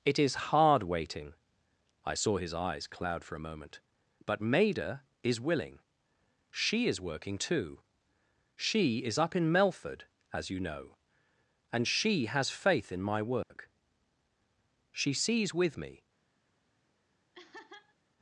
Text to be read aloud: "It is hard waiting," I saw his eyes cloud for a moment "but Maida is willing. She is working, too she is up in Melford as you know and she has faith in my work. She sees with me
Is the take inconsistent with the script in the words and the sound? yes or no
yes